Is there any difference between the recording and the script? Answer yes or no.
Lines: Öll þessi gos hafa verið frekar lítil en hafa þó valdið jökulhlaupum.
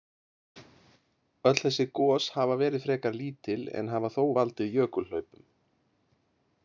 no